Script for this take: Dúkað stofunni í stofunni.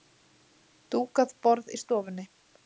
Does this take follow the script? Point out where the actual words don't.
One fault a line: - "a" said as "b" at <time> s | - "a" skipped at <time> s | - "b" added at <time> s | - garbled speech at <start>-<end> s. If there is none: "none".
- "stofunni" said as "borð" at 1.5 s